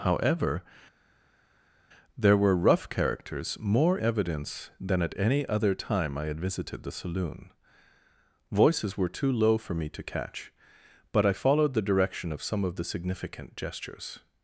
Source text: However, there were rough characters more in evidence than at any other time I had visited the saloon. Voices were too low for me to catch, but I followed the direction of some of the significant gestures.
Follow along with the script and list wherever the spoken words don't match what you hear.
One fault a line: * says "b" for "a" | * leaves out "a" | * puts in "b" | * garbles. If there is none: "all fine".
* leaves out "in"